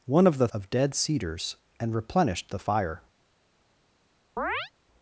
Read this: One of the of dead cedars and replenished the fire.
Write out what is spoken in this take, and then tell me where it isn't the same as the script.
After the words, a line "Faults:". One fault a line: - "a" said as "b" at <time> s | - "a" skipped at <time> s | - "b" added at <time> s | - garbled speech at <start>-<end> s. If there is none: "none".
One of the of dead cedars and replenished the fire.
Faults:
none